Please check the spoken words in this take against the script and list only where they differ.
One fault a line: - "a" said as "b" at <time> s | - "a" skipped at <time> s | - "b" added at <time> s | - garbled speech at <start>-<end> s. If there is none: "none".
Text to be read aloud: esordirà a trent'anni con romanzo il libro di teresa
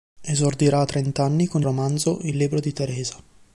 none